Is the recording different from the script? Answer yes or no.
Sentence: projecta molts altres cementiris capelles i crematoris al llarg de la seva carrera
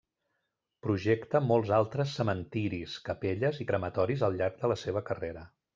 no